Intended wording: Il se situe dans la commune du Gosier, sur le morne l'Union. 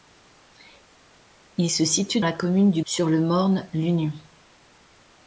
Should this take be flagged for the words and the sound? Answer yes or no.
yes